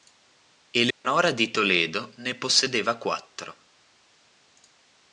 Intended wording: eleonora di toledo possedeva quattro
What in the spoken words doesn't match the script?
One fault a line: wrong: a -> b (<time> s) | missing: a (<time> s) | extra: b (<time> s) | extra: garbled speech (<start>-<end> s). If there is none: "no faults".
extra: ne (2.1 s)